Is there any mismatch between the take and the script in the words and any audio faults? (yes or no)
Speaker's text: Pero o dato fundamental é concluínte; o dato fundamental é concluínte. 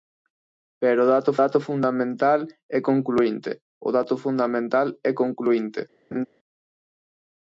yes